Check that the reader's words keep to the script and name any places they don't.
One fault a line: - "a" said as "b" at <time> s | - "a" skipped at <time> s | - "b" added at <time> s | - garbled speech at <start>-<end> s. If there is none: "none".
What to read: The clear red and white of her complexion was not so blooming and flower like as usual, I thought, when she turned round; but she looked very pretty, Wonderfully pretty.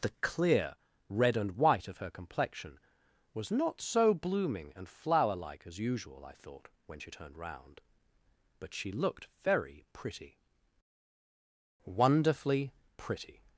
none